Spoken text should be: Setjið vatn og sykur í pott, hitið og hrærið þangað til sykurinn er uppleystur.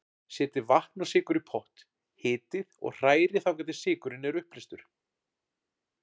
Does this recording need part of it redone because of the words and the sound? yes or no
no